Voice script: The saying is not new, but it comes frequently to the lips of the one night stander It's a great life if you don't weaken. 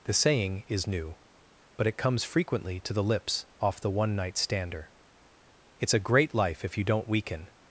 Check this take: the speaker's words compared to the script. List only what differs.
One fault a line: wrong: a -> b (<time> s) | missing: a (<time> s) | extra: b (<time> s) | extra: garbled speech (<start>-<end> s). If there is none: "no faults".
missing: not (0.9 s)
wrong: of -> off (3.6 s)